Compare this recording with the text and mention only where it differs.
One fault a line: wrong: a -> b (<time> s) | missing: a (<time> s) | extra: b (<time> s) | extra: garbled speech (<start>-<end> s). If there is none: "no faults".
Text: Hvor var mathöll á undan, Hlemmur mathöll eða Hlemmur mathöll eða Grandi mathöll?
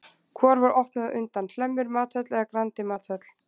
wrong: mathöll -> opnuð (0.8 s)
missing: Hlemmur mathöll eða (2.4 s)